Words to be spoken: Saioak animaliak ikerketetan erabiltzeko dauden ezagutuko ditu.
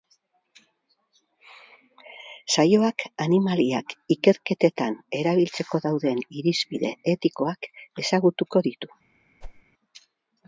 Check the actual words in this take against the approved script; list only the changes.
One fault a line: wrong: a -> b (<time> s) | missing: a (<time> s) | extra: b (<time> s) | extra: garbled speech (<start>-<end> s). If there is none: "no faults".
extra: irizpide etikoak (6.4 s)